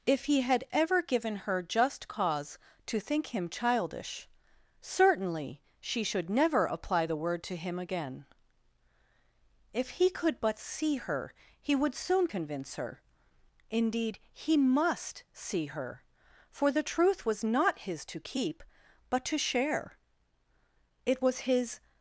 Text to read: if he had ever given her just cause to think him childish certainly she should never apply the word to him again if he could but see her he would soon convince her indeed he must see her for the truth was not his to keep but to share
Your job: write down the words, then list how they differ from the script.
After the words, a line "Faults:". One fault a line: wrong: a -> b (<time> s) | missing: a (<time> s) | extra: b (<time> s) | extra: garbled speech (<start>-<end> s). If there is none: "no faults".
if he had ever given her just cause to think him childish certainly she should never apply the word to him again if he could but see her he would soon convince her indeed he must see her for the truth was not his to keep but to share it was his
Faults:
extra: it was his (21.0 s)